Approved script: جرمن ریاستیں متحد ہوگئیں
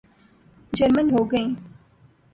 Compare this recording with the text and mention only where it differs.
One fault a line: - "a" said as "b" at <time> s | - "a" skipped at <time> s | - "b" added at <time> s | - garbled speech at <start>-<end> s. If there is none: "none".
- "ریاستیں متحد" skipped at 1.1 s